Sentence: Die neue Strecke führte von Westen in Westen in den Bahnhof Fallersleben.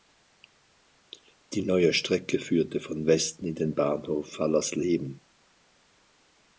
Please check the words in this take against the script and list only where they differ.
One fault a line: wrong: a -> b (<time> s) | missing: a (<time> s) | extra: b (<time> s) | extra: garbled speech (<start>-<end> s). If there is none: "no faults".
missing: Westen in (3.6 s)